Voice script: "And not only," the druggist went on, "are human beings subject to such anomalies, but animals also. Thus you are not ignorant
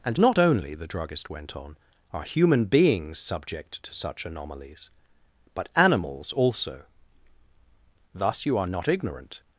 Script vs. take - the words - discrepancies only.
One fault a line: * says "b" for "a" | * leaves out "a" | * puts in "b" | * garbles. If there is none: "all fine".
all fine